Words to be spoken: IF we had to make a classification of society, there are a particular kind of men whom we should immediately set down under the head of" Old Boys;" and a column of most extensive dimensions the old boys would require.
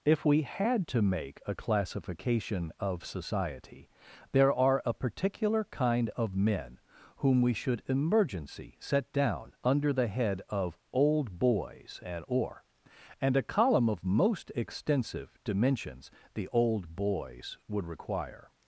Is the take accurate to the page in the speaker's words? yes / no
no